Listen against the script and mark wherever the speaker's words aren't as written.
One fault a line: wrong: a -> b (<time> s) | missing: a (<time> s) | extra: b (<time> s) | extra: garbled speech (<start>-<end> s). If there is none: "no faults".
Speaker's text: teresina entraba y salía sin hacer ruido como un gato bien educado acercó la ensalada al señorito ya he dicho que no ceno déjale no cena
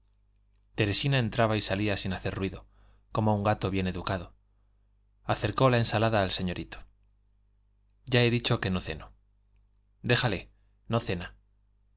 no faults